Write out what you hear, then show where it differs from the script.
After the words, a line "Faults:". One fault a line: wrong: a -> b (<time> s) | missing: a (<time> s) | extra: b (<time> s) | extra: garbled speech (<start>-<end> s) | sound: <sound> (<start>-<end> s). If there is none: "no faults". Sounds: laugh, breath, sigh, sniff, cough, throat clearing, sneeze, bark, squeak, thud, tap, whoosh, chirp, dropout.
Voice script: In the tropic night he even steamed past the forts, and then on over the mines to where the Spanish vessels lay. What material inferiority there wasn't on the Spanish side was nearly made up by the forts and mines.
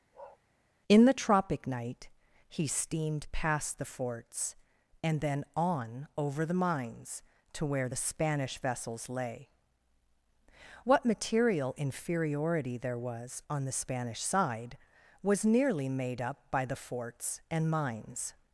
In the tropic night he steamed past the forts, and then on over the mines to where the Spanish vessels lay. What material inferiority there was on the Spanish side was nearly made up by the forts and mines.
Faults:
sound: bark (0.1-0.4 s)
missing: even (2.7 s)
wrong: wasn't -> was (13.0 s)